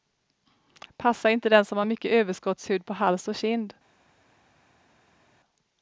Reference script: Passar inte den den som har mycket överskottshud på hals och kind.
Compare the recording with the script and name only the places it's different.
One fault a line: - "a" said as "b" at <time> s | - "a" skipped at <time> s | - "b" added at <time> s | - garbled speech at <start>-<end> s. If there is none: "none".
- "den" skipped at 1.6 s